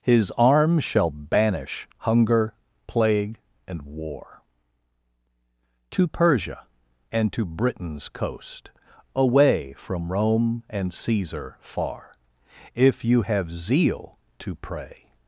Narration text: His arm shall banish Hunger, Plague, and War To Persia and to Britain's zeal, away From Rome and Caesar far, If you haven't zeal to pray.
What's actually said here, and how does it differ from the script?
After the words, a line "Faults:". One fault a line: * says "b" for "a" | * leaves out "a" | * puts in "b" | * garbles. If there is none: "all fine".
His arm shall banish Hunger, Plague, and War To Persia and to Britain's coast, away From Rome and Caesar far, If you have zeal to pray.
Faults:
* says "coast" for "zeal"
* says "have" for "haven't"